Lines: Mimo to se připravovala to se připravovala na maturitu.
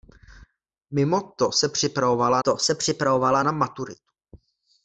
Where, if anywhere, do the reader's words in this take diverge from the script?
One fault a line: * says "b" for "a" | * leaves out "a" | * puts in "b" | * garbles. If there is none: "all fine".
all fine